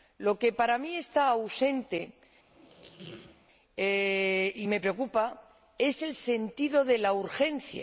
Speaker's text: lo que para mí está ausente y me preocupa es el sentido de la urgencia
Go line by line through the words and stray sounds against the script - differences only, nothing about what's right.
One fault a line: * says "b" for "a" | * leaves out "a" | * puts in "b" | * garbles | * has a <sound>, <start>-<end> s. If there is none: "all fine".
* has a squeak, 2.5-3.5 s